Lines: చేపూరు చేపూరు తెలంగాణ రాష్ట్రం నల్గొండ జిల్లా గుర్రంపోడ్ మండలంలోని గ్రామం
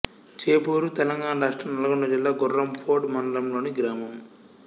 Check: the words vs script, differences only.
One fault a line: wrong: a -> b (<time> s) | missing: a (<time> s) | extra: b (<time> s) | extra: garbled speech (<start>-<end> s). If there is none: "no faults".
missing: చేపూరు (0.9 s)